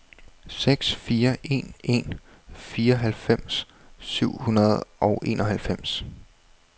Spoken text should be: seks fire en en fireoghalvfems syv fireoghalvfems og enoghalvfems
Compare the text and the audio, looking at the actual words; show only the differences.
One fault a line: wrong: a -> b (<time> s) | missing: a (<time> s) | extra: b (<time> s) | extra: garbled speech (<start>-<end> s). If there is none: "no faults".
wrong: fireoghalvfems -> hundrede (4.4 s)